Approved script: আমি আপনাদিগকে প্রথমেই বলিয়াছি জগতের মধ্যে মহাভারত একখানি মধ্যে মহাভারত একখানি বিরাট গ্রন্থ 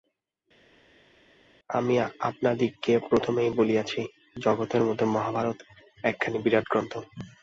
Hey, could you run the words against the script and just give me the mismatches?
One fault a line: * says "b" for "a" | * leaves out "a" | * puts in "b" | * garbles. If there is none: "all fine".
* leaves out "মধ্যে মহাভারত একখানি"